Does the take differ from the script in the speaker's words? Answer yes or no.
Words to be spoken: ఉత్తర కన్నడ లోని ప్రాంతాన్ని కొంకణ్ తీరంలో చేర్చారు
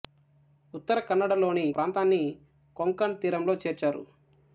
no